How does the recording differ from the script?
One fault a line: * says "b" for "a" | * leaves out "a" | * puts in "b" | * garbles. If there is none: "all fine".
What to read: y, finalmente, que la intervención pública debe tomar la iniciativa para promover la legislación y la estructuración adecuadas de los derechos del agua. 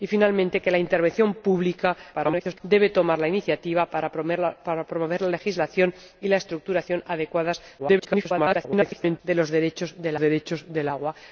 * garbles
* garbles
* puts in "derechos del"